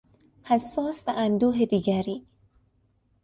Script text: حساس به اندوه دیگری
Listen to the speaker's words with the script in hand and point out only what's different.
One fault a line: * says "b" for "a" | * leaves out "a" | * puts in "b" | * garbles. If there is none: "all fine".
all fine